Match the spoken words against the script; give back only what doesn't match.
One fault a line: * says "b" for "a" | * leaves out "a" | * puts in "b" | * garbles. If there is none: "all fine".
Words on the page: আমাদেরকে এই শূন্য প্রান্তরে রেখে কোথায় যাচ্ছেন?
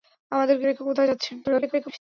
* leaves out "এই শূন্য প্রান্তরে"
* garbles